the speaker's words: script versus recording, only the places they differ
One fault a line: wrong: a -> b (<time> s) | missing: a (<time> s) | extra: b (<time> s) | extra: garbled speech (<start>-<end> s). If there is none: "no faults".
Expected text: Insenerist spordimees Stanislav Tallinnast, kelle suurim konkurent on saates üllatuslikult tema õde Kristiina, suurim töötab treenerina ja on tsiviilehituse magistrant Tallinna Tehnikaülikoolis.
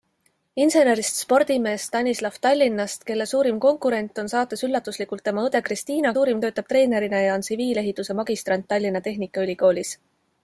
no faults